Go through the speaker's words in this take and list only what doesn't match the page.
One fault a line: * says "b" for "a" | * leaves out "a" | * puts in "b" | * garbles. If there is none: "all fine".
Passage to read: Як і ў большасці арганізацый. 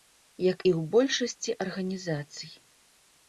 all fine